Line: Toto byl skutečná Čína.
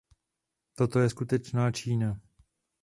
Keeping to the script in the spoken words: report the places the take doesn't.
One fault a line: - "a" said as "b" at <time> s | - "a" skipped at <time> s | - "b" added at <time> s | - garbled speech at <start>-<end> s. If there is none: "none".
- "byl" said as "je" at 1.0 s